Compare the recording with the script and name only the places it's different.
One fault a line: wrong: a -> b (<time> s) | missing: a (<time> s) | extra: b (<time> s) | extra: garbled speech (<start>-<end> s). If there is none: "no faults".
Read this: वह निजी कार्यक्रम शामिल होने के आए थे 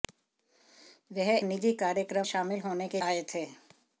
no faults